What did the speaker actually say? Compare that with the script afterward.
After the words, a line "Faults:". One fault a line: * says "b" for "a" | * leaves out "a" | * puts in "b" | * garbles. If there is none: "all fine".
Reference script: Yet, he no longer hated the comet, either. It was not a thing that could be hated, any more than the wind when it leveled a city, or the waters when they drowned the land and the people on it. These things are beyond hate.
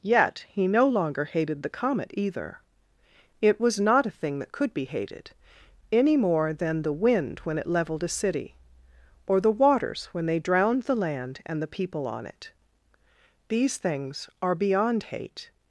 Yet, he no longer hated the comet, either. It was not a thing that could be hated, any more than the wind when it leveled a city, or the waters when they drowned the land and the people on it. These things are beyond hate.
Faults:
all fine